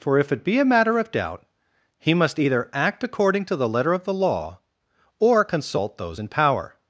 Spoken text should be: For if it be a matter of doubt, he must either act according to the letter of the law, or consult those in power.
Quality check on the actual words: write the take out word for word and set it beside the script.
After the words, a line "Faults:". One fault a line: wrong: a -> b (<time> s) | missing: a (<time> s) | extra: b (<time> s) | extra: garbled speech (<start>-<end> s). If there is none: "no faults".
For if it be a matter of doubt, he must either act according to the letter of the law, or consult those in power.
Faults:
no faults